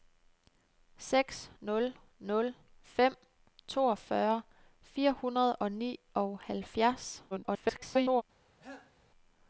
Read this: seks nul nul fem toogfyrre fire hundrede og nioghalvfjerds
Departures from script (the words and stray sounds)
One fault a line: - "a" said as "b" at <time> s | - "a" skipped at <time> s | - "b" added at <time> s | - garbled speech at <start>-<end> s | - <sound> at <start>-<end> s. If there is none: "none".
- garbled speech at 7.3-8.2 s
- cough at 8.6-8.9 s